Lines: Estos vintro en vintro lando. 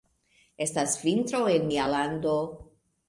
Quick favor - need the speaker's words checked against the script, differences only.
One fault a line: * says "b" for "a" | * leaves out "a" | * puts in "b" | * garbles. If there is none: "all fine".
* says "Estas" for "Estos"
* says "mia" for "vintro"